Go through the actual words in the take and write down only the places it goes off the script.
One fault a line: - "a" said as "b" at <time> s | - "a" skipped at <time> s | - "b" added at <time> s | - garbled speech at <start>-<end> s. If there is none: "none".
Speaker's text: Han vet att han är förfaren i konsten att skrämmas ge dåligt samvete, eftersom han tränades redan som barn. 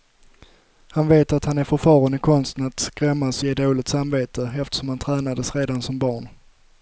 none